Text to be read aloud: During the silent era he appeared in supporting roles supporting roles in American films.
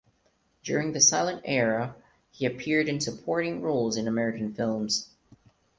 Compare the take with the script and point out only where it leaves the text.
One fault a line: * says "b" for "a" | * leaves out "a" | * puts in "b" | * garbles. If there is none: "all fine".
* leaves out "supporting roles"